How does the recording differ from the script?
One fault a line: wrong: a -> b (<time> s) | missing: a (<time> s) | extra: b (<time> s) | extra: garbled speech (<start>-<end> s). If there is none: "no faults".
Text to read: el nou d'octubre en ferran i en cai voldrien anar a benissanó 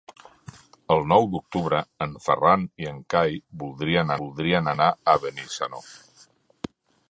extra: voldrien (4.2 s)